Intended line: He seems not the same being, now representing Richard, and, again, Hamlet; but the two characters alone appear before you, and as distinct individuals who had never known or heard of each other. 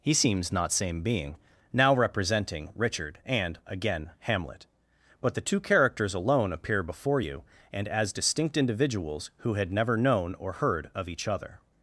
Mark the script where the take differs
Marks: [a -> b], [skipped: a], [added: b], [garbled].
He seems not [skipped: the] same being, now representing Richard, and, again, Hamlet; but the two characters alone appear before you, and as distinct individuals who had never known or heard of each other.